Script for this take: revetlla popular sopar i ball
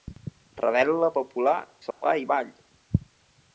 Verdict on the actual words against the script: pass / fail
pass